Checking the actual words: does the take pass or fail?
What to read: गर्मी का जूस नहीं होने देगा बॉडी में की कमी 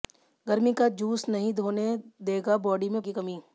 pass